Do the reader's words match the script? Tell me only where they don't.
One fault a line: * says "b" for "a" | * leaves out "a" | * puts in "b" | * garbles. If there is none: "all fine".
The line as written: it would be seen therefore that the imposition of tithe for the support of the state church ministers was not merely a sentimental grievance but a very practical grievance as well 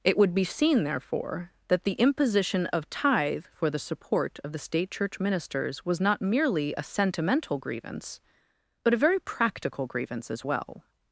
all fine